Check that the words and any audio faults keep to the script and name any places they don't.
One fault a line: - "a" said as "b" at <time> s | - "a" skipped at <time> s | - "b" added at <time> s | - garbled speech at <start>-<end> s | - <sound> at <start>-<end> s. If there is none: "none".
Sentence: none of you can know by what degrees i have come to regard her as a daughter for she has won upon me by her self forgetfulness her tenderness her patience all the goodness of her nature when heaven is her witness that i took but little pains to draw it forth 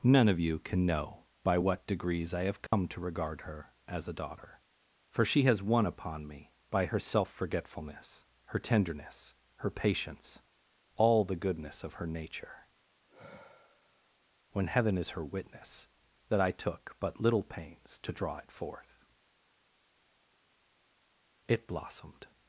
- dropout at 2.7-2.7 s
- sigh at 13.1-14.1 s
- "it blossomed" added at 21.5 s